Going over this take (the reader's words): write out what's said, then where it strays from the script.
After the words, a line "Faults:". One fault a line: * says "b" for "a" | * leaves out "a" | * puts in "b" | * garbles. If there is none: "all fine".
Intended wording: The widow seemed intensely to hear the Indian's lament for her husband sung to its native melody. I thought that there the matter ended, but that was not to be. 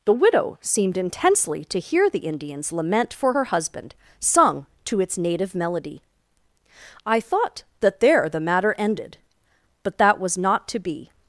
The widow seemed intensely to hear the Indian's lament for her husband sung to its native melody. I thought that there the matter ended, but that was not to be.
Faults:
all fine